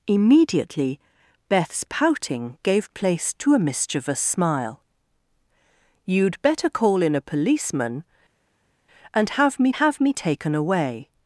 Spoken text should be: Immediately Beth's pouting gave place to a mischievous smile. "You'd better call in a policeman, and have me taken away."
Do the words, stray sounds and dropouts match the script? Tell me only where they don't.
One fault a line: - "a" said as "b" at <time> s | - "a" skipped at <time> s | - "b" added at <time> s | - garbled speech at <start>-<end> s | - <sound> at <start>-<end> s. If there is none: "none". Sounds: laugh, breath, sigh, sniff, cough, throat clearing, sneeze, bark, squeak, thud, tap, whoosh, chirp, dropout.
- "have me" added at 9.7 s